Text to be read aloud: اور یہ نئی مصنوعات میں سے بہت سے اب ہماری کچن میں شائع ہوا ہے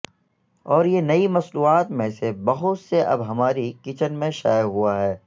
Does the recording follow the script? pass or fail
pass